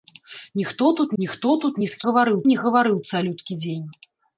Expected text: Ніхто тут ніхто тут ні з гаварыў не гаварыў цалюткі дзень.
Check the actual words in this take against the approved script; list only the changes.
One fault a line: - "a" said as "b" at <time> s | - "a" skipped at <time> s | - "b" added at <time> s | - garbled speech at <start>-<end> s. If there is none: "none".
none